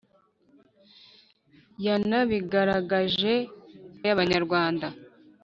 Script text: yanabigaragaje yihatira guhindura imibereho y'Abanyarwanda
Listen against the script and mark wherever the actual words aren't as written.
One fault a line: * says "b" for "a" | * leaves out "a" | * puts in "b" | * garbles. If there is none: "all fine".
* leaves out "yihatira guhindura imibereho"